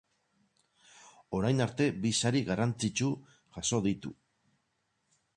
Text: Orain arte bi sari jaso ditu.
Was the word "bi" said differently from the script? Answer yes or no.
no